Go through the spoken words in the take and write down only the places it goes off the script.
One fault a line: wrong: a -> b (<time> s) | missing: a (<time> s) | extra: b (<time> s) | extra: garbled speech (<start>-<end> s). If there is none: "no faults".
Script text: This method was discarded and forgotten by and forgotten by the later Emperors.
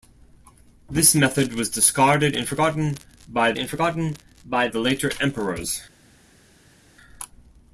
no faults